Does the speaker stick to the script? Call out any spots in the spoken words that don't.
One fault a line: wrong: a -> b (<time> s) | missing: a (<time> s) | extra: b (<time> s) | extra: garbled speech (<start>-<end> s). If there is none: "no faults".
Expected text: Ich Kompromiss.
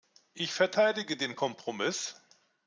extra: verteidige den (0.5 s)